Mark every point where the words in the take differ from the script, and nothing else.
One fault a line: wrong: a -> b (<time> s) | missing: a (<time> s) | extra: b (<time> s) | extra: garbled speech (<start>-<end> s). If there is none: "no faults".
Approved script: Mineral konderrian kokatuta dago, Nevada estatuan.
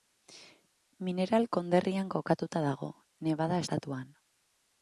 no faults